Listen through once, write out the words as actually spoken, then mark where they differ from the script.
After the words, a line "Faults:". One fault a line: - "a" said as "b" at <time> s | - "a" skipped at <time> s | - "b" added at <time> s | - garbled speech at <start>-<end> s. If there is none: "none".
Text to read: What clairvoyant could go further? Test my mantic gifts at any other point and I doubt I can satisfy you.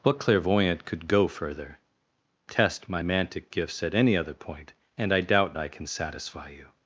What clairvoyant could go further? Test my mantic gifts at any other point and I doubt I can satisfy you.
Faults:
none